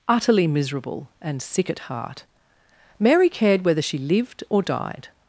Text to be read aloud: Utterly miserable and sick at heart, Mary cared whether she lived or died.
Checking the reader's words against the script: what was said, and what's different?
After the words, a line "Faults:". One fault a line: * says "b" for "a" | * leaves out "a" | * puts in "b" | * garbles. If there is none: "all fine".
Utterly miserable and sick at heart, Mary cared whether she lived or died.
Faults:
all fine